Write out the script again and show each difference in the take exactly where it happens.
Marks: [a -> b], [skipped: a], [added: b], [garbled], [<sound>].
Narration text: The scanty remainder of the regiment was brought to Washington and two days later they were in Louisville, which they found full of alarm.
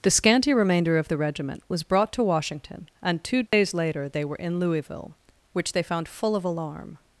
The scanty remainder of the regiment was brought to Washington and two days [dropout] later they were in Louisville, which they found full of alarm.